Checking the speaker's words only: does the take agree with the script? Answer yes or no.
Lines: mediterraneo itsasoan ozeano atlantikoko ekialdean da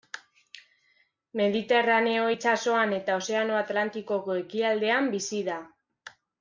no